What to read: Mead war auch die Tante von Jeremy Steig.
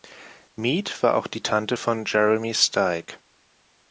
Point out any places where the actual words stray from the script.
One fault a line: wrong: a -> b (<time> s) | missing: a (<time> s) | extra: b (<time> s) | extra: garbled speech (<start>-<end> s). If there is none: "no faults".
no faults